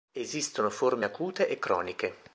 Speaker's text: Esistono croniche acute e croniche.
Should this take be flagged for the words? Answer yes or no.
yes